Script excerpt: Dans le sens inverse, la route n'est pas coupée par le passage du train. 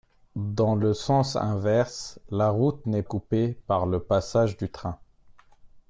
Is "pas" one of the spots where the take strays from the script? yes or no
yes